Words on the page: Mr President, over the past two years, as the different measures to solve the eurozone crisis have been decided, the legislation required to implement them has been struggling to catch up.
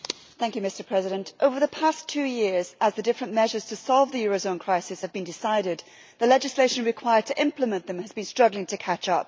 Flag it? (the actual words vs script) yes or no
no